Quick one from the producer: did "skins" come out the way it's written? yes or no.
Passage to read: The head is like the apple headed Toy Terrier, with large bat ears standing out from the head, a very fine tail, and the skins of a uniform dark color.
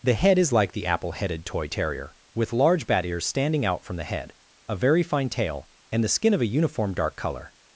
no